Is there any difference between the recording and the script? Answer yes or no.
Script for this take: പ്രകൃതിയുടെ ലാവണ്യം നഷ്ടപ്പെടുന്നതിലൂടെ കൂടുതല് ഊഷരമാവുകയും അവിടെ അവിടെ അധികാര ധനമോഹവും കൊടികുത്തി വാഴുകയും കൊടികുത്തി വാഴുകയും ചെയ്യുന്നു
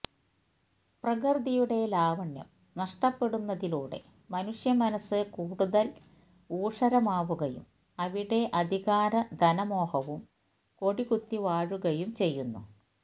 yes